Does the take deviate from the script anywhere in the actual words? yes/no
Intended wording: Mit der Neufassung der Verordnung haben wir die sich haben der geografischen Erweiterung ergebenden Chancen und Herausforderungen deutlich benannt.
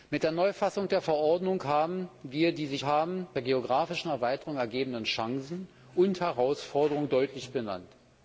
no